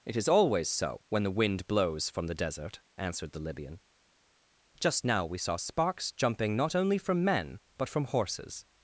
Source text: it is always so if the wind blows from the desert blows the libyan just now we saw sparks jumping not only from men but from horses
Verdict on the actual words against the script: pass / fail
fail